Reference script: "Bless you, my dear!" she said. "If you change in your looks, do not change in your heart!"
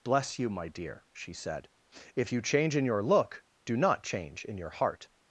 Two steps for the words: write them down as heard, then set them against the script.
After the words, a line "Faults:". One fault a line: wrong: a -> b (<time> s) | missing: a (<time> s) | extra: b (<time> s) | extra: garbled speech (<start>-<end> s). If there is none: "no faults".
"Bless you, my dear!" she said. "If you change in your look, do not change in your heart!"
Faults:
wrong: looks -> look (3.0 s)